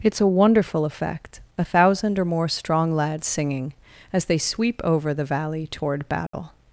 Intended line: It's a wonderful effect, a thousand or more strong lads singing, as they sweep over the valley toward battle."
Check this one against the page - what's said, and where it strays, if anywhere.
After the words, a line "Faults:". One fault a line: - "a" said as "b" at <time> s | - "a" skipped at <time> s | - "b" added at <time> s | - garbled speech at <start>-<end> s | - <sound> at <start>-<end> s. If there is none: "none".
It's a wonderful effect, a thousand or more strong lads singing, as they sweep over the valley toward battle."
Faults:
- dropout at 6.3-6.3 s